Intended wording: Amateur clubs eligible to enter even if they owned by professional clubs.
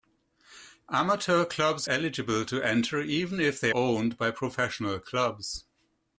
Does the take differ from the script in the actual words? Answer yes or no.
no